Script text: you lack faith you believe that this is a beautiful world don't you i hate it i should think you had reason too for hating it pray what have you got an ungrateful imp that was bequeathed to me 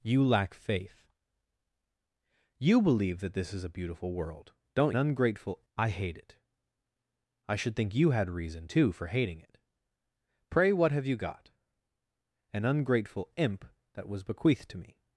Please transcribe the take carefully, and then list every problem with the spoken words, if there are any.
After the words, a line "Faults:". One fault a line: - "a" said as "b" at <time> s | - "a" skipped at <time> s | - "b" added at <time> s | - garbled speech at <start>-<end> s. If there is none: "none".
you lack faith you believe that this is a beautiful world don't ungrateful i hate it i should think you had reason too for hating it pray what have you got an ungrateful imp that was bequeathed to me
Faults:
- "you" said as "ungrateful" at 4.9 s